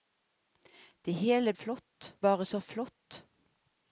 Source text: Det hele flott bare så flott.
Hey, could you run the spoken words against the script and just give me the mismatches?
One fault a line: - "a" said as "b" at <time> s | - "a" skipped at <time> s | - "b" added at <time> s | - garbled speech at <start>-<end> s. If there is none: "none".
none